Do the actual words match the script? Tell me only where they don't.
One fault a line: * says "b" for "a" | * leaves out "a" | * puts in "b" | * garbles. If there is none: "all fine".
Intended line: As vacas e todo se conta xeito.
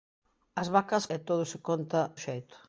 all fine